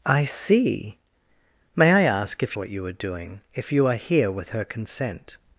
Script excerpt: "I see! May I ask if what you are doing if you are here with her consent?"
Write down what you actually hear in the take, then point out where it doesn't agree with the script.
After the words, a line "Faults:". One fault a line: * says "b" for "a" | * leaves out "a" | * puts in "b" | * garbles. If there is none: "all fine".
"I see! May I ask if what you are doing if you are here with her consent?"
Faults:
all fine